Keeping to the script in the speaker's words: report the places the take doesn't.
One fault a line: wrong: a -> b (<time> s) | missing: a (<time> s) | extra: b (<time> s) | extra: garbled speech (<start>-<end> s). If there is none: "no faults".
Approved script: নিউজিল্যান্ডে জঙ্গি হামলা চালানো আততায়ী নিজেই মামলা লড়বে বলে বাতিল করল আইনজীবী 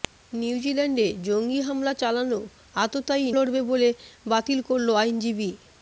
missing: নিজেই মামলা (3.3 s)